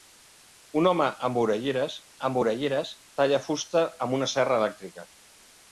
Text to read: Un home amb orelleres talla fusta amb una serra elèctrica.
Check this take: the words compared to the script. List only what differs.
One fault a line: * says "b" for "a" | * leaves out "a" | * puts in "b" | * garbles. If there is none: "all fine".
* puts in "amb orelleres"